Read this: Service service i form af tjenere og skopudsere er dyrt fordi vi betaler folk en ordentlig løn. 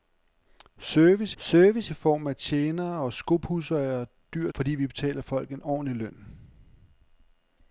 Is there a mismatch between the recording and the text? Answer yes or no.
no